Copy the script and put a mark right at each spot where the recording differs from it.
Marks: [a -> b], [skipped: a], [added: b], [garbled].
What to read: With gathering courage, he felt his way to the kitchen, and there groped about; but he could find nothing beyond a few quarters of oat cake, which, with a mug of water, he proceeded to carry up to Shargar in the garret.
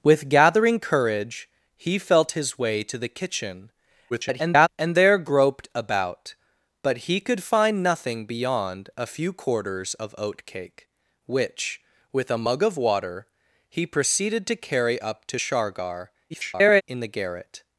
With gathering courage, he felt his way to the kitchen, [garbled] and there groped about; but he could find nothing beyond a few quarters of oat cake, which, with a mug of water, he proceeded to carry up to Shargar [garbled] in the garret.